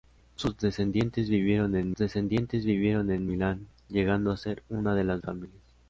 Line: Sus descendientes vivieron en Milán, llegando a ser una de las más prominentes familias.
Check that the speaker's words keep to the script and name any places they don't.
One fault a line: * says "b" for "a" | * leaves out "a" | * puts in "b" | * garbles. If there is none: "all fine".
* puts in "descendientes vivieron en"
* leaves out "más prominentes"